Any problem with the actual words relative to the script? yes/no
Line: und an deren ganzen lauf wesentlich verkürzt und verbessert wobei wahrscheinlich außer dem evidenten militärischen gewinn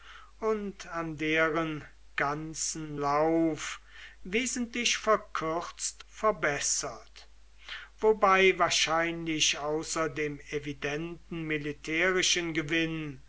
yes